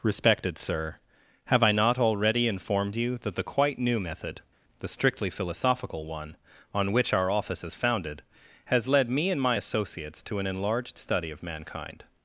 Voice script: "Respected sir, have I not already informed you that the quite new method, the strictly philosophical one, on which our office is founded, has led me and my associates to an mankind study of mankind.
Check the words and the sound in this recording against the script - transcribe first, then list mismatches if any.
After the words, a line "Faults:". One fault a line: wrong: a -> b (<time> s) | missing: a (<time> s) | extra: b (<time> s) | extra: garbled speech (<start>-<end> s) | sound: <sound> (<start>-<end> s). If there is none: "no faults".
"Respected sir, have I not already informed you that the quite new method, the strictly philosophical one, on which our office is founded, has led me and my associates to an enlarged study of mankind.
Faults:
wrong: mankind -> enlarged (10.5 s)